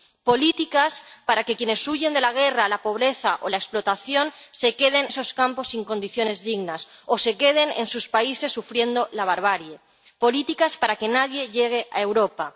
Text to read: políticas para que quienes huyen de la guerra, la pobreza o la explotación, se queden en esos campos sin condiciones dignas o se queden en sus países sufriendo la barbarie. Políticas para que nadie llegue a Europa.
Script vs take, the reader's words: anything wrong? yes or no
yes